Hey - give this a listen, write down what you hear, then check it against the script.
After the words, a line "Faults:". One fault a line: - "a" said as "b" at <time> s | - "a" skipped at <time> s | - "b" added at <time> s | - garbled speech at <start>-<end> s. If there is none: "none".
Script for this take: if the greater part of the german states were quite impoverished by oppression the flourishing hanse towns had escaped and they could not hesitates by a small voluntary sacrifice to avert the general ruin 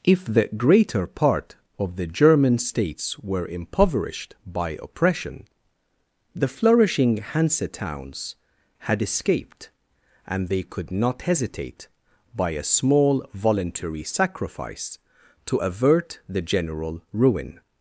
if the greater part of the german states were impoverished by oppression the flourishing hanse towns had escaped and they could not hesitate by a small voluntary sacrifice to avert the general ruin
Faults:
- "quite" skipped at 3.5 s
- "hesitates" said as "hesitate" at 11.2 s